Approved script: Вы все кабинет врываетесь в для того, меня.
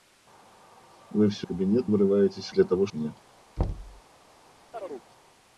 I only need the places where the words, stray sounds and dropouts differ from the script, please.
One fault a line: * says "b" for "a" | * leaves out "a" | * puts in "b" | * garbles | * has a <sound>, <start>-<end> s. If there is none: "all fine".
* has a thud, 3.6-4.0 s
* has a chirp, 4.7-5.1 s